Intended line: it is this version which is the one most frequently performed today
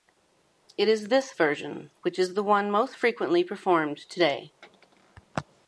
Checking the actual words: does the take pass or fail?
pass